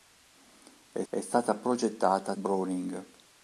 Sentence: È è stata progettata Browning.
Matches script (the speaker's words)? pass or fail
pass